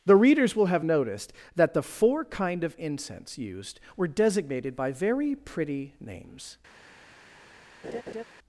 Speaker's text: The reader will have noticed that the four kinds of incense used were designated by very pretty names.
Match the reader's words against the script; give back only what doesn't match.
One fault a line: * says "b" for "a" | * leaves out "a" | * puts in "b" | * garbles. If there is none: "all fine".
* says "readers" for "reader"
* says "kind" for "kinds"